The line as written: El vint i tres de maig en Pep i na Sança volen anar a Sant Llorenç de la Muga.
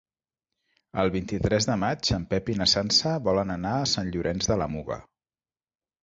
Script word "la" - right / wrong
right